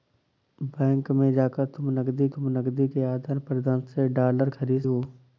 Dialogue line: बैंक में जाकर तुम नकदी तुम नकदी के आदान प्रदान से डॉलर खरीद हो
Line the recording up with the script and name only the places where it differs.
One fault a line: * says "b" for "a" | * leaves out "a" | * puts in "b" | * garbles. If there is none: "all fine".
all fine